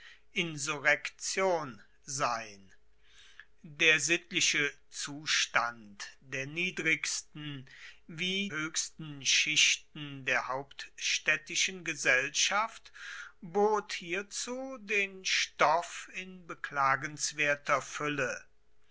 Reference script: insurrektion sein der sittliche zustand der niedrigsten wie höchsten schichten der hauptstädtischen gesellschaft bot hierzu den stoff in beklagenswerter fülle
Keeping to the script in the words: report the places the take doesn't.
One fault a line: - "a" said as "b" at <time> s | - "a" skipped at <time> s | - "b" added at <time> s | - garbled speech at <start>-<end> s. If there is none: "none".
none